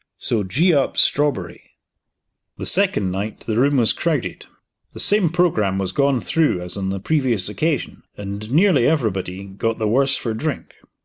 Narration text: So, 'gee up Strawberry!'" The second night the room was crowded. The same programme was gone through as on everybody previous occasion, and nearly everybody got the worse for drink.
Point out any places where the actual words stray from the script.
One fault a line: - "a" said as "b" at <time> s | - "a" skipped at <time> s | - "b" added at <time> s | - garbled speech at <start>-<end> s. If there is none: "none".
- "everybody" said as "the" at 6.9 s